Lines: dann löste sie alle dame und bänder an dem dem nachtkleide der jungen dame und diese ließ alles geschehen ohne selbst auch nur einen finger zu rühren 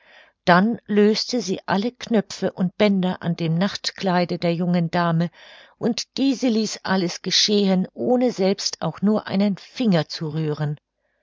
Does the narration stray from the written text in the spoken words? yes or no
yes